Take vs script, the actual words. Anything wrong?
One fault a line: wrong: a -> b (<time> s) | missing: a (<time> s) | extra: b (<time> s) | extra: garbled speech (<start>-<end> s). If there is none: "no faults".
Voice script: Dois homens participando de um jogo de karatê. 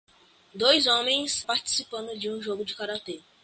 no faults